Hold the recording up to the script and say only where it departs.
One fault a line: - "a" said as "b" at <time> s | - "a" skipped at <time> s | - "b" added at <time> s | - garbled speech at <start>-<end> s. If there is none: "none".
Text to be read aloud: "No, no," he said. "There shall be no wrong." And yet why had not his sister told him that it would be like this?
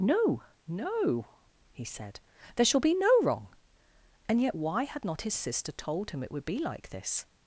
- "that" skipped at 6.2 s